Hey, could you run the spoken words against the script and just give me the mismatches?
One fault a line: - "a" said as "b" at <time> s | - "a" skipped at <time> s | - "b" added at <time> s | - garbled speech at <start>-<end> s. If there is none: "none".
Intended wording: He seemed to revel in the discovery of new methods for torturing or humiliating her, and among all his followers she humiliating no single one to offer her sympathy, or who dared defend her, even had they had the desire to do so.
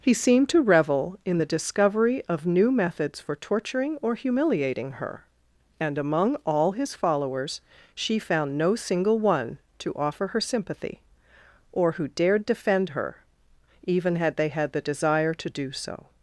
- "humiliating" said as "found" at 8.2 s